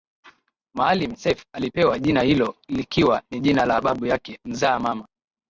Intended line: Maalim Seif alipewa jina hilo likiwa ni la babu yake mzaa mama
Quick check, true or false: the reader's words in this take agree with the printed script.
false